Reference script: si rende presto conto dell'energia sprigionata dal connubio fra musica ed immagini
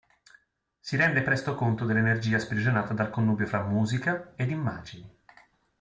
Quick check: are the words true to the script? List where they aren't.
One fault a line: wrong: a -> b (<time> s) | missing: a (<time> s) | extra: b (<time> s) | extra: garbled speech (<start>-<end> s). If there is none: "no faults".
no faults